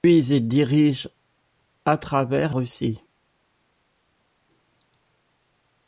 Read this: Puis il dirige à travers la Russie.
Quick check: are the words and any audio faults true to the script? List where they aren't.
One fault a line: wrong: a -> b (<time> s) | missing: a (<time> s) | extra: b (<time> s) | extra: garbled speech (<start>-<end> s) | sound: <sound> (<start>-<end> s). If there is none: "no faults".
missing: la (2.5 s)